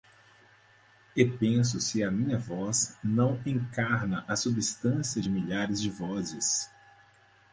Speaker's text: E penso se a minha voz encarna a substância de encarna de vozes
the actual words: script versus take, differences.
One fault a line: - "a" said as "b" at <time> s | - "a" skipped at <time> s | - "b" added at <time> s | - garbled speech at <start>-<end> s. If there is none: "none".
- "não" added at 3.0 s
- "encarna" said as "milhares" at 5.3 s